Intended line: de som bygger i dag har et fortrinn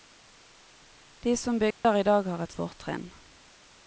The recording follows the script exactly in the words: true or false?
true